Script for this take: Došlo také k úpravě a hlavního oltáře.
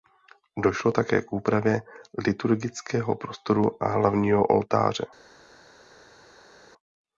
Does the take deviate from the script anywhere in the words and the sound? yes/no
yes